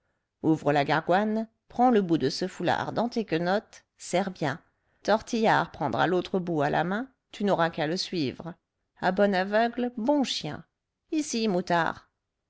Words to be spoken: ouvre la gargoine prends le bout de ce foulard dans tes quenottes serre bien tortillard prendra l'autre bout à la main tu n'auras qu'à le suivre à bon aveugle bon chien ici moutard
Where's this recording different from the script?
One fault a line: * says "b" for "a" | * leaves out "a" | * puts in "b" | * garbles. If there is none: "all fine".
all fine